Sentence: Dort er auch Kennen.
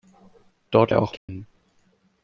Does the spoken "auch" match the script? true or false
true